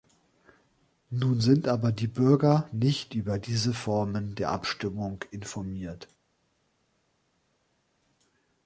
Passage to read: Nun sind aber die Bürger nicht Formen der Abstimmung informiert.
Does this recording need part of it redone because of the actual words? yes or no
yes